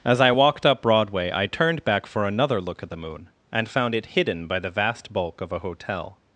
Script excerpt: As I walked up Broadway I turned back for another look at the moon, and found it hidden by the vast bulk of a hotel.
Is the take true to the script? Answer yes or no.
yes